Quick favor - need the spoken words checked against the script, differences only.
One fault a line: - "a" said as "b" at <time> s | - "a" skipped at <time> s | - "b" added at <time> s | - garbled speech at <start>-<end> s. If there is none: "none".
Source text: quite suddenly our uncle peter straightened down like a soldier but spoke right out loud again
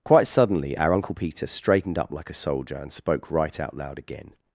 - "down" said as "up" at 2.0 s
- "but" said as "and" at 2.8 s